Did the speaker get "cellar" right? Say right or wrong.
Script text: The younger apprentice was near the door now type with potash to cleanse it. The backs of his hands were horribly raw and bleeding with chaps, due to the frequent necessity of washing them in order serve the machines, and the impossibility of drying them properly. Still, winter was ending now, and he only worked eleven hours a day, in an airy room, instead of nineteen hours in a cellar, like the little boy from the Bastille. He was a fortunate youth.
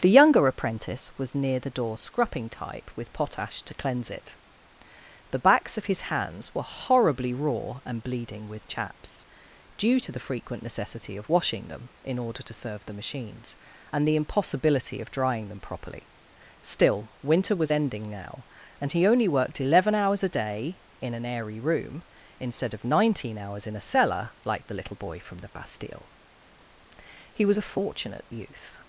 right